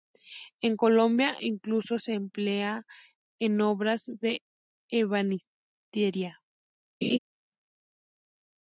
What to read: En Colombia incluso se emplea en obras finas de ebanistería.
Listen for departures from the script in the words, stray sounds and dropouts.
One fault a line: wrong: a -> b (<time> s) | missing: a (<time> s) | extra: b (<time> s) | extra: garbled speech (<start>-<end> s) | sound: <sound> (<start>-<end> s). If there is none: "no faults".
missing: finas (4.1 s)
sound: laugh (7.0-7.2 s)